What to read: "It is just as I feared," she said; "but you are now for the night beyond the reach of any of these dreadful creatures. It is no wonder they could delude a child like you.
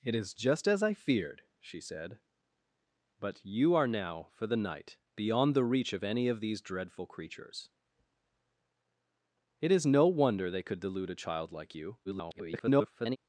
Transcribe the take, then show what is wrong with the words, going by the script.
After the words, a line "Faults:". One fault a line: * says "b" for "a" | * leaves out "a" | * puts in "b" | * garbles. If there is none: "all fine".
"It is just as I feared," she said; "but you are now for the night beyond the reach of any of these dreadful creatures. It is no wonder they could delude a child like you. [garbled]
Faults:
* garbles